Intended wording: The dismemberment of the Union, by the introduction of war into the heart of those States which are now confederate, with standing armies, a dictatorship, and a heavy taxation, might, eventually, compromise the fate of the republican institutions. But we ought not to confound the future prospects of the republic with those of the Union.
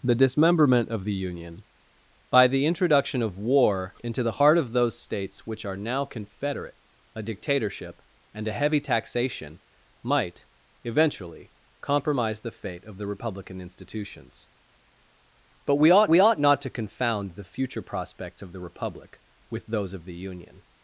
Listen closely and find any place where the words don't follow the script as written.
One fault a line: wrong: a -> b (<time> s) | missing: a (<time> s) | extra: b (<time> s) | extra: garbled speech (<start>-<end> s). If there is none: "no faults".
missing: with standing armies (6.8 s)
extra: we ought (16.0 s)